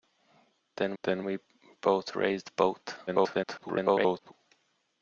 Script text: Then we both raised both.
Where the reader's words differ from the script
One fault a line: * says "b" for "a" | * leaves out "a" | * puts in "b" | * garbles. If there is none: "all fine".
* puts in "then"
* garbles